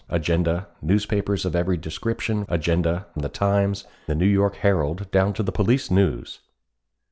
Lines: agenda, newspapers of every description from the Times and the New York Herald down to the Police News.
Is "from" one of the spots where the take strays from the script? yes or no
yes